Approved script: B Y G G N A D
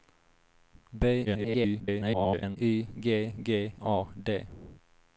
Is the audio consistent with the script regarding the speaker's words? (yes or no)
no